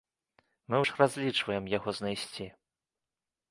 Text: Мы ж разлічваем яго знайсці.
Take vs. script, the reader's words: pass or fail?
pass